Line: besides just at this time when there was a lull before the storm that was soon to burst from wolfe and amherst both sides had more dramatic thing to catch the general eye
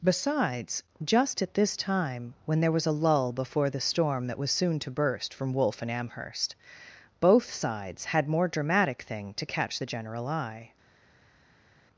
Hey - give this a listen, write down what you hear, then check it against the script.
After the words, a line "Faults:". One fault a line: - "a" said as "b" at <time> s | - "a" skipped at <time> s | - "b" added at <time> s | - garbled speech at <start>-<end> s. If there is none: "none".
besides just at this time when there was a lull before the storm that was soon to burst from wolfe and amherst both sides had more dramatic thing to catch the general eye
Faults:
none